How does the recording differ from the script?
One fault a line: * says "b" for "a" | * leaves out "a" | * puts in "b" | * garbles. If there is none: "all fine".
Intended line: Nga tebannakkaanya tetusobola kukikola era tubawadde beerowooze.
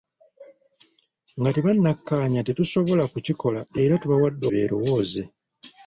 all fine